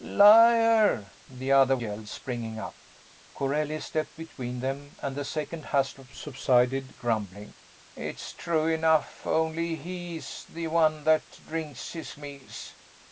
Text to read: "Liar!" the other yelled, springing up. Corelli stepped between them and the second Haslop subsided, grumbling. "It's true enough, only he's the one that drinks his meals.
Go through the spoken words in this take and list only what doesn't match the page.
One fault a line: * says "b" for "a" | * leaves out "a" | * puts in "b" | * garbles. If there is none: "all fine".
all fine